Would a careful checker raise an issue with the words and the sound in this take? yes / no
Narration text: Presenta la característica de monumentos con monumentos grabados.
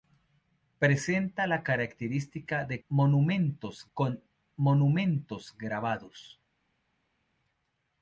no